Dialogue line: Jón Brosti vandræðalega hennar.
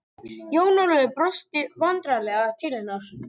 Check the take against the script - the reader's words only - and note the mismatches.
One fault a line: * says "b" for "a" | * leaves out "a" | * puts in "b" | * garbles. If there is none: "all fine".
* puts in "Ólafur"
* puts in "til"